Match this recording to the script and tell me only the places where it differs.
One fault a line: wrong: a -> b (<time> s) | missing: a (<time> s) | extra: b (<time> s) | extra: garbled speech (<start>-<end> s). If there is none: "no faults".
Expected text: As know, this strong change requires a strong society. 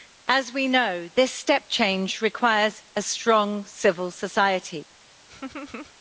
extra: we (0.5 s)
wrong: strong -> step (1.3 s)
extra: civil (3.7 s)